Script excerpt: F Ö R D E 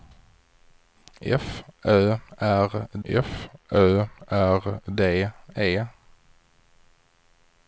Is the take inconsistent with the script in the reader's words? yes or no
yes